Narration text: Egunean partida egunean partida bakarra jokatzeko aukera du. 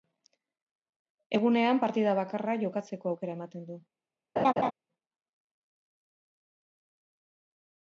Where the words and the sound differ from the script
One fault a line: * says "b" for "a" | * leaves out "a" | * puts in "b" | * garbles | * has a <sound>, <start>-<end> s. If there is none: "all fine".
* leaves out "egunean partida"
* puts in "ematen"
* has a laugh, 4.4-4.7 s